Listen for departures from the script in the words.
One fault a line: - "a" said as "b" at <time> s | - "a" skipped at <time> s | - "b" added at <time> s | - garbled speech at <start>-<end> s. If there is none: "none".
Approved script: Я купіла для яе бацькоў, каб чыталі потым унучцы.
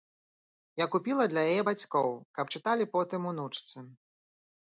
none